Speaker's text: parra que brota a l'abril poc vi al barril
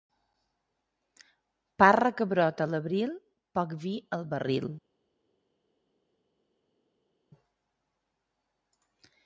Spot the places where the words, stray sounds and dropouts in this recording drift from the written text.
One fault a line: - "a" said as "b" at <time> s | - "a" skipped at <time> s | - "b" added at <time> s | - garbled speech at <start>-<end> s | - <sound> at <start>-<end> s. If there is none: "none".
none